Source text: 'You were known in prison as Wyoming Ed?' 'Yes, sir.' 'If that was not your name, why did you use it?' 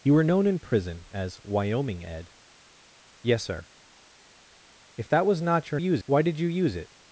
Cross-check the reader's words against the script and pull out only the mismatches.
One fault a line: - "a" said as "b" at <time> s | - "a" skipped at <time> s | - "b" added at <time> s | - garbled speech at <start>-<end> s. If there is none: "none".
- "name" said as "use" at 5.8 s